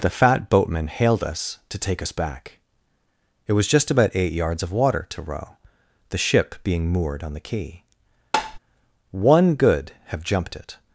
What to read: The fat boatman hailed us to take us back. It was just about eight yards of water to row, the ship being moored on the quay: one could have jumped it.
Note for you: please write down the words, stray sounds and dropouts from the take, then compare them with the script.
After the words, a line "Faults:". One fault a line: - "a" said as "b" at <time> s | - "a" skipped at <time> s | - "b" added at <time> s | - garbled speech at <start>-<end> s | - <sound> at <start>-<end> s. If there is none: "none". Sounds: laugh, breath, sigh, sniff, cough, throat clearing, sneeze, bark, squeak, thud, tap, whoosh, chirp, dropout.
The fat boatman hailed us to take us back. It was just about eight yards of water to row, the ship being moored on the quay: one good have jumped it.
Faults:
- tap at 8.3-8.6 s
- "could" said as "good" at 9.6 s